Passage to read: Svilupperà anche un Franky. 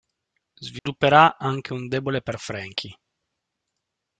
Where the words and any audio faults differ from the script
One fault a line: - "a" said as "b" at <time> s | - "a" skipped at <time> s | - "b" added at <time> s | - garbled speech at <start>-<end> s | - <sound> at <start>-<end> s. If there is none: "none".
- dropout at 0.8-0.9 s
- "debole per" added at 1.9 s